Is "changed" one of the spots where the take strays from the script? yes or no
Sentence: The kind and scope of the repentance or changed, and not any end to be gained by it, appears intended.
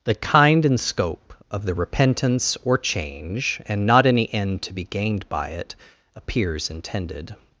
yes